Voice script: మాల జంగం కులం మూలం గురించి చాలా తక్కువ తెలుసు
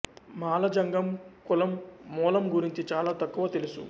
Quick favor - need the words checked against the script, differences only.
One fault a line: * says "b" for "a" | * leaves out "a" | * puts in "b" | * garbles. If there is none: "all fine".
all fine